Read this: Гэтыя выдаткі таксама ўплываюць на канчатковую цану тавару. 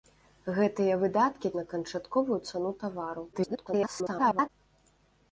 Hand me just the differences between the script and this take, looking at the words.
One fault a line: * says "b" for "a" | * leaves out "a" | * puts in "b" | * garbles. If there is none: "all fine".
* leaves out "таксама ўплываюць"
* garbles